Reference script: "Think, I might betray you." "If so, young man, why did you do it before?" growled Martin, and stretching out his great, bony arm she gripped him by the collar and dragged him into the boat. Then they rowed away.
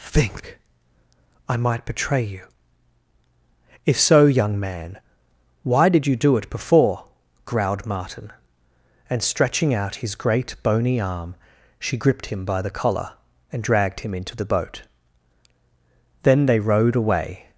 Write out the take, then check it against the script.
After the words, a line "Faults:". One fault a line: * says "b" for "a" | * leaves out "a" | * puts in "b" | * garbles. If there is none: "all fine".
"Think, I might betray you." "If so, young man, why did you do it before?" growled Martin, and stretching out his great, bony arm she gripped him by the collar and dragged him into the boat. Then they rowed away.
Faults:
all fine